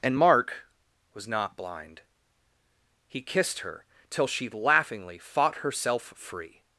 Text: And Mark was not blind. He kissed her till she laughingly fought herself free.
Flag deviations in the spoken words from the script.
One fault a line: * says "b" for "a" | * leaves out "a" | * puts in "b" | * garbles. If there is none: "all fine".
all fine